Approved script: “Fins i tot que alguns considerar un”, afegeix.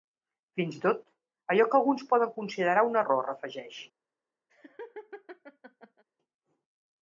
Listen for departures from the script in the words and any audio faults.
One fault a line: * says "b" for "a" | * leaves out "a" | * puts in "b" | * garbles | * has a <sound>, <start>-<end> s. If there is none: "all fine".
* puts in "allò"
* puts in "poden"
* puts in "error"
* has a laugh, 4.5-6.0 s